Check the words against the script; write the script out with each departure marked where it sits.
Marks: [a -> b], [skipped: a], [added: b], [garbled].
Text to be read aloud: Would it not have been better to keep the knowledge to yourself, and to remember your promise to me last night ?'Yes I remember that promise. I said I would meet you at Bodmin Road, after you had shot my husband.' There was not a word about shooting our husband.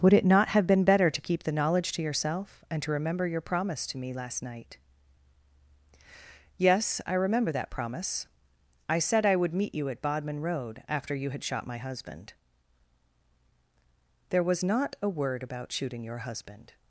Would it not have been better to keep the knowledge to yourself, and to remember your promise to me last night ?'Yes I remember that promise. I said I would meet you at Bodmin Road, after you had shot my husband.' There was not a word about shooting [our -> your] husband.